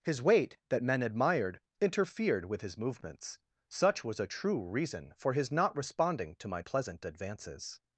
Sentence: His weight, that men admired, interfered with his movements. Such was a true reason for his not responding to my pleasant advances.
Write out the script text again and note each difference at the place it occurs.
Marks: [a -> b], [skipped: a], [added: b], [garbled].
His weight, that men admired, interfered with his movements. Such was a true reason for his not responding to my pleasant advances.